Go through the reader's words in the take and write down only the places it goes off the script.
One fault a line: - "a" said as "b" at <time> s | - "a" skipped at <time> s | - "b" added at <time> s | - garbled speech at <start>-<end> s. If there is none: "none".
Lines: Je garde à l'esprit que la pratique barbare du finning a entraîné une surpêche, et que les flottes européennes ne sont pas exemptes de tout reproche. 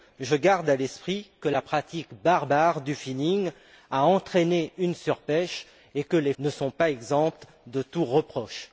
- "flottes européennes" skipped at 6.3 s